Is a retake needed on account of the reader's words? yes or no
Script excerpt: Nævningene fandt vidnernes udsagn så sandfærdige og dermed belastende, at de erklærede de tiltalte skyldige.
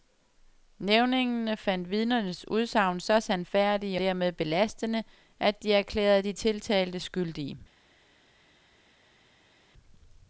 yes